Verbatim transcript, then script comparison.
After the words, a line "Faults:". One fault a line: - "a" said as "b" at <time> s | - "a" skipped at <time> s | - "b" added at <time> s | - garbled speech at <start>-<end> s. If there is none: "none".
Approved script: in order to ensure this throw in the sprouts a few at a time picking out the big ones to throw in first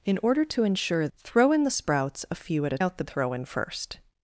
in order to ensure throw in the sprouts a few at a out the throw in first
Faults:
- "this" skipped at 1.1 s
- "time picking" skipped at 2.8 s
- "big ones to" skipped at 3.0 s